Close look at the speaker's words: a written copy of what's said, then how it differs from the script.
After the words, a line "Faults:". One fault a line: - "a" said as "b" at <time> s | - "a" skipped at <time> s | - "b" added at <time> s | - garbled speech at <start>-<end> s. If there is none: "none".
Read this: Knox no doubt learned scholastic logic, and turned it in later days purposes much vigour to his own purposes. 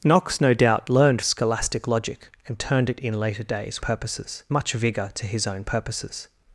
Knox no doubt learned scholastic logic, and turned it in later days purposes much vigour to his own purposes.
Faults:
none